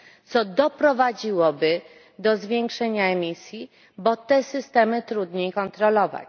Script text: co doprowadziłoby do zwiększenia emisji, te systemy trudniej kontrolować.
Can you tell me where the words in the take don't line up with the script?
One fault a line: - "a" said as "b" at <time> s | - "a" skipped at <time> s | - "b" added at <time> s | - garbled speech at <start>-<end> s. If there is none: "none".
- "bo" added at 4.0 s